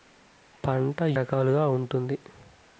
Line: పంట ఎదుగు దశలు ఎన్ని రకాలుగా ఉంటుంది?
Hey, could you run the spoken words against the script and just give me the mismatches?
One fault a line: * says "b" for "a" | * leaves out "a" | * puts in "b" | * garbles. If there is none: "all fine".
* leaves out "ఎదుగు దశలు ఎన్ని"